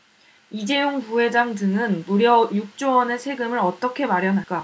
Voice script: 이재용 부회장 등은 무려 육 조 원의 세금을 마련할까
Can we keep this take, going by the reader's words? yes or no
no